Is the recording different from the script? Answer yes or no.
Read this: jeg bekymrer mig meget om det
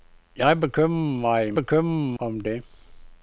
yes